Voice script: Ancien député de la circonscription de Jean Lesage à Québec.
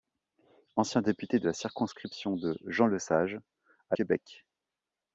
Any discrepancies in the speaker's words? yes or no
no